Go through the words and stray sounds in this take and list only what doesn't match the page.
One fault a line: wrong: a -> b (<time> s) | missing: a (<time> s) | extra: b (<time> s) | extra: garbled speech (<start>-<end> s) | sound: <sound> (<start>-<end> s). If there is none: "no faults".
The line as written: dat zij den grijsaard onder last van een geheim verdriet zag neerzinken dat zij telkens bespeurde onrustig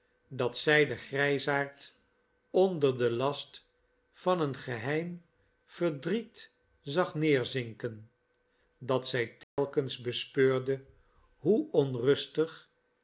extra: den (3.0 s)
sound: dropout (9.4-9.6 s)
extra: hoe (11.4 s)